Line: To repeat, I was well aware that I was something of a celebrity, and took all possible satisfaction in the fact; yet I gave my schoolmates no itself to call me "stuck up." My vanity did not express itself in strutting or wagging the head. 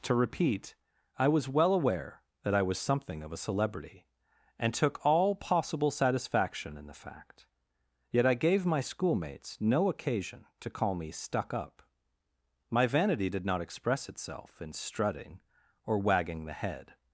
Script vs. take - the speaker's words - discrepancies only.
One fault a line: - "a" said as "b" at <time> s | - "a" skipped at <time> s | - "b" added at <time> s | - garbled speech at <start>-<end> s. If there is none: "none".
- "itself" said as "occasion" at 9.9 s